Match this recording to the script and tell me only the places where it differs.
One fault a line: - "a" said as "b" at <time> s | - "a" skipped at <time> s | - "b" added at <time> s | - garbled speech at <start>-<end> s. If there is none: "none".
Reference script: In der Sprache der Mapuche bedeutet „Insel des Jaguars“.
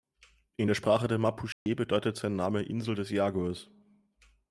- "sein Name" added at 2.1 s